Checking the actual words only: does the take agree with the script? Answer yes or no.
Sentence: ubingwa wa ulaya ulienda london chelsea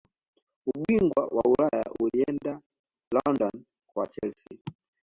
no